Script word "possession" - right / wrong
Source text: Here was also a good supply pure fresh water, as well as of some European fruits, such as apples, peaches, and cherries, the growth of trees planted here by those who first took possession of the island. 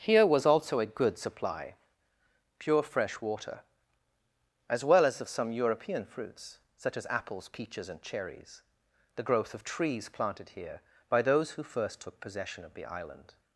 right